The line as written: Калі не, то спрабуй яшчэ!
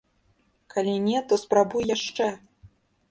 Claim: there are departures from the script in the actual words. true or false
false